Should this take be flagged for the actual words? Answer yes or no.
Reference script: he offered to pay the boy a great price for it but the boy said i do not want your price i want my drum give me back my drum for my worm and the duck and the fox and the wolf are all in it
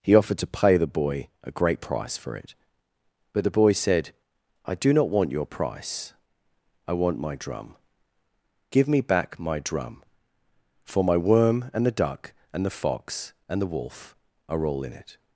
no